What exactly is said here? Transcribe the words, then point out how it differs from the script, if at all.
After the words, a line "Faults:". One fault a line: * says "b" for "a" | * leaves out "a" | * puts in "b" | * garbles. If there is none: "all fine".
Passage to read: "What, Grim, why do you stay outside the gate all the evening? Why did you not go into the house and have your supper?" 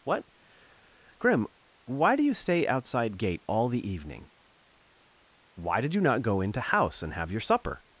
"What, Grim, why do you stay outside gate all the evening? Why did you not go into house and have your supper?"
Faults:
* leaves out "the"
* leaves out "the"